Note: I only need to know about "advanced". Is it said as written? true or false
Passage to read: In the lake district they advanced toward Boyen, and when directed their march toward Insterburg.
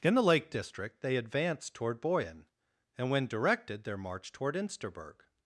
true